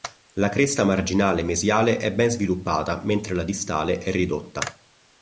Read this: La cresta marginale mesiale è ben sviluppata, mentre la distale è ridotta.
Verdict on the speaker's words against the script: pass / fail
pass